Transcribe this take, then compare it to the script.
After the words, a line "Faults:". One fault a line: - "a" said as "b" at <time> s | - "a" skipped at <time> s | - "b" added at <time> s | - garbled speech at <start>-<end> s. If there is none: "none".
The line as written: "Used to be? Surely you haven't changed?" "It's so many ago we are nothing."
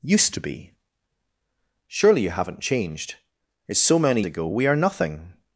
"Used to be? Surely you haven't changed?" "It's so many ago we are nothing."
Faults:
none